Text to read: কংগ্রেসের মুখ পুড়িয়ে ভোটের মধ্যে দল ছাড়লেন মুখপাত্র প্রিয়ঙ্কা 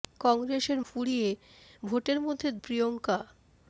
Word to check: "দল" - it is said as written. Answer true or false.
false